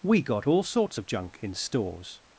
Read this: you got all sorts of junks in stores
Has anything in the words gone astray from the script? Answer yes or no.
yes